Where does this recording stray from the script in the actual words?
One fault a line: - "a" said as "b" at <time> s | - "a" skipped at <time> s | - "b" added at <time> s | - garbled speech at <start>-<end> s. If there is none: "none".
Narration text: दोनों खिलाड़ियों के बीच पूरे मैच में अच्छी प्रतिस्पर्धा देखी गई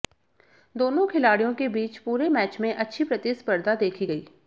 none